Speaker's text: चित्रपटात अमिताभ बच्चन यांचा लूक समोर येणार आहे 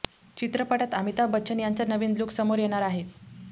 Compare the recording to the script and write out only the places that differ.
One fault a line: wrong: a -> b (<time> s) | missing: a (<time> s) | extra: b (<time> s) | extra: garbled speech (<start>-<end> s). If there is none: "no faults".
extra: नवीन (1.9 s)